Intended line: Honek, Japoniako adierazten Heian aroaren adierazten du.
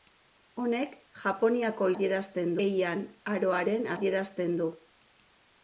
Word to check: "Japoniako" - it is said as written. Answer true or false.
true